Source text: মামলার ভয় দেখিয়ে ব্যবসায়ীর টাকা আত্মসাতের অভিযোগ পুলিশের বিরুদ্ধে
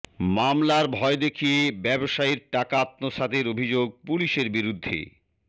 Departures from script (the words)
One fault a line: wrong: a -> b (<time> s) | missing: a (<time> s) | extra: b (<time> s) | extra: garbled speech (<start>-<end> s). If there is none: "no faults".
no faults